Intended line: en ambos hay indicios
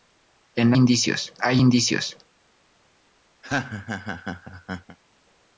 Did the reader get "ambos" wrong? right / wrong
wrong